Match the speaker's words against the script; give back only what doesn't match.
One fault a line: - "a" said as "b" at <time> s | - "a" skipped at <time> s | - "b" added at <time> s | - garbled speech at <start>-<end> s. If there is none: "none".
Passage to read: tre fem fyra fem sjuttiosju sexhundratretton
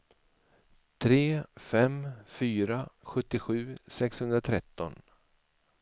- "fem" skipped at 2.8 s